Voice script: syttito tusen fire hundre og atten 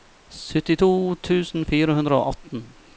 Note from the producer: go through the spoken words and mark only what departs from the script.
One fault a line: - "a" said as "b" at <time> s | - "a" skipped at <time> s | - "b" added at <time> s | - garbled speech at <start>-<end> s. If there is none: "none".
none